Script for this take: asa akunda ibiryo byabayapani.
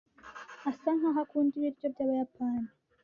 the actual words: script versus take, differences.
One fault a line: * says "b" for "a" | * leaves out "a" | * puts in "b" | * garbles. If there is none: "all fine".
* puts in "nkaho"